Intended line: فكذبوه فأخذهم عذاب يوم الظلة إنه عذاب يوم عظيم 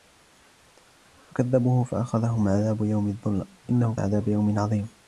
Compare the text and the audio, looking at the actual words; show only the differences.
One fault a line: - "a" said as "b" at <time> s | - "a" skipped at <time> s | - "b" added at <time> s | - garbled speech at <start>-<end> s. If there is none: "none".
none